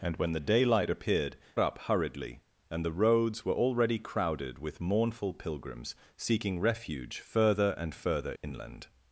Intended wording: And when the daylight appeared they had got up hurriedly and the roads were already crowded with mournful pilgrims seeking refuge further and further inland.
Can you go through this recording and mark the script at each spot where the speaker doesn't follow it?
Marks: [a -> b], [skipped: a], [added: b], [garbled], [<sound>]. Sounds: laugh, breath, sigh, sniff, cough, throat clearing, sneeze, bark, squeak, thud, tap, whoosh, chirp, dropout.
And when the daylight appeared [skipped: they had got] up hurriedly and the roads were already crowded with mournful pilgrims seeking refuge further and further inland. [dropout]